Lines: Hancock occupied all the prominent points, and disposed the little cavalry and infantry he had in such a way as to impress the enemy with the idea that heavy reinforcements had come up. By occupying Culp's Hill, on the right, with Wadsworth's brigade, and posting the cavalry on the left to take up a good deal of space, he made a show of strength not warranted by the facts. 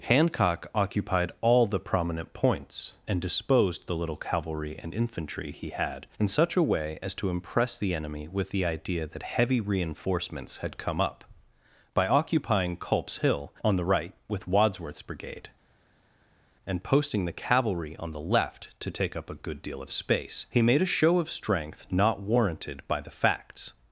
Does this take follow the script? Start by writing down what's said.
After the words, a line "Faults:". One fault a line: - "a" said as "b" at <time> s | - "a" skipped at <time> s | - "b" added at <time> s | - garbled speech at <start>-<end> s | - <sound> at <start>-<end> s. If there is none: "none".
Hancock occupied all the prominent points, and disposed the little cavalry and infantry he had in such a way as to impress the enemy with the idea that heavy reinforcements had come up. By occupying Culp's Hill, on the right, with Wadsworth's brigade, and posting the cavalry on the left to take up a good deal of space, he made a show of strength not warranted by the facts.
Faults:
none